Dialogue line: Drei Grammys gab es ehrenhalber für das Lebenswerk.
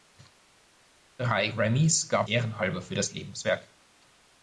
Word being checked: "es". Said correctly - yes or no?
no